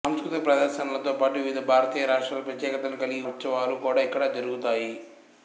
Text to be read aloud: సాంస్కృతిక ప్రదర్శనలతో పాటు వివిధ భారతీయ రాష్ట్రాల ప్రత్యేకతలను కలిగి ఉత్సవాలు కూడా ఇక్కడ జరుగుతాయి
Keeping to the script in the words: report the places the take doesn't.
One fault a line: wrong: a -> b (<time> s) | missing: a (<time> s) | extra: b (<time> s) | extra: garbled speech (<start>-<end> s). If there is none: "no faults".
no faults